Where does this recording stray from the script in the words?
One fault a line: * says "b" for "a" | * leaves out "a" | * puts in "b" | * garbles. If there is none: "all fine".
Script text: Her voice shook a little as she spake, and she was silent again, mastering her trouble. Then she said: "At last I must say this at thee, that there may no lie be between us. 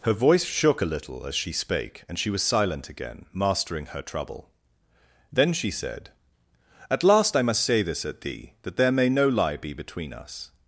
all fine